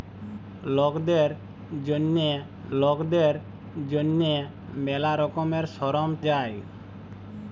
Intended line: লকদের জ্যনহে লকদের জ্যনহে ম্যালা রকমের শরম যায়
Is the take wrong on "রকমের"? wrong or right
right